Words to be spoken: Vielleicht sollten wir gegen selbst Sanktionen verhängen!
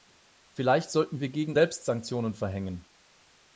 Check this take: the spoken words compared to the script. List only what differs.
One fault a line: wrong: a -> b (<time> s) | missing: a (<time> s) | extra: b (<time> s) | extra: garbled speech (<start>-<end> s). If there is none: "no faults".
no faults